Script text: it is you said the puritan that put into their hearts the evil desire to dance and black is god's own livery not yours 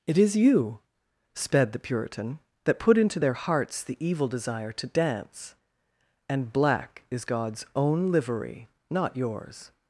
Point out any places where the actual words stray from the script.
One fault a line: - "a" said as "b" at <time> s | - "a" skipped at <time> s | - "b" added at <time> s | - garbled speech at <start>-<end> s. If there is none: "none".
- "said" said as "sped" at 1.4 s